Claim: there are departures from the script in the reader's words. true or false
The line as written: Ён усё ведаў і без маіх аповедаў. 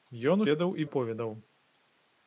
true